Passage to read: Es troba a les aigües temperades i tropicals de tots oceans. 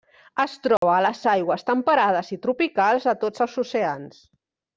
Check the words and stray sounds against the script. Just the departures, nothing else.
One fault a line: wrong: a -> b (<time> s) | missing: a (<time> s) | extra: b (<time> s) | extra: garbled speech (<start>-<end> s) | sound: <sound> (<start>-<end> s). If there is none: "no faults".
sound: dropout (0.8-0.8 s)
extra: els (3.5 s)